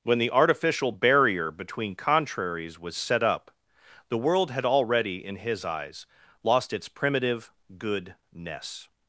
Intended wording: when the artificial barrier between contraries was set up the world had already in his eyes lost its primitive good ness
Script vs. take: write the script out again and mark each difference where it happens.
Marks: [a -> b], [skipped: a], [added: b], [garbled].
when the artificial barrier between contraries was set up the world had already in his eyes lost its primitive good ness